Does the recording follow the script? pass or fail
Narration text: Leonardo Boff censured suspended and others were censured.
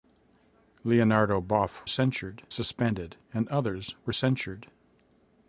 pass